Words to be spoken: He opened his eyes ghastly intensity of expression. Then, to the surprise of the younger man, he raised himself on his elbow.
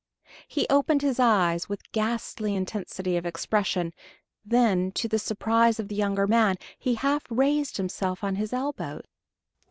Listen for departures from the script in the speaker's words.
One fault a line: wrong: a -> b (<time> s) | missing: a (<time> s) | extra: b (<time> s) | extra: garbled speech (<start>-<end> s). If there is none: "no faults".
extra: with (1.7 s)
extra: half (6.9 s)